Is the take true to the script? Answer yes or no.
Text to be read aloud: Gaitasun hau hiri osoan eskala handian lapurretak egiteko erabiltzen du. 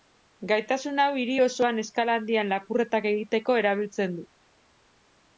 yes